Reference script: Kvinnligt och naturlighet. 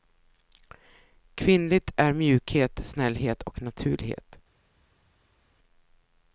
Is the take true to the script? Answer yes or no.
no